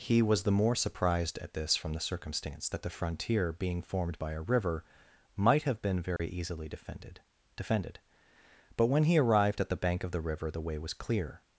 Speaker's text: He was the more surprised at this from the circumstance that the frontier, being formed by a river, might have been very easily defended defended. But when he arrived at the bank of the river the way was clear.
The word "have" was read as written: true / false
true